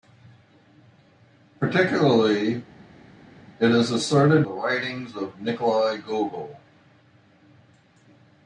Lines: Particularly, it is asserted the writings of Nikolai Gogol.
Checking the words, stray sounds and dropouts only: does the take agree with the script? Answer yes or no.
yes